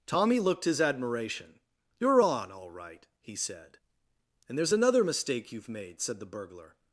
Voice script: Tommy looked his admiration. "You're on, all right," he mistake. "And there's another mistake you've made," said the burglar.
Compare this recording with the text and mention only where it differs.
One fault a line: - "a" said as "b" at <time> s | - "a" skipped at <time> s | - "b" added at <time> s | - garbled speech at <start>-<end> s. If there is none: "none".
- "mistake" said as "said" at 3.4 s